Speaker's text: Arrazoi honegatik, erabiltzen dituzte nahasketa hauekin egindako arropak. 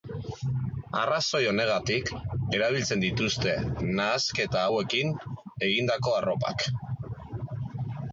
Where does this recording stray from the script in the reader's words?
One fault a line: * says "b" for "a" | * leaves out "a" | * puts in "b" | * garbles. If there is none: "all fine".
all fine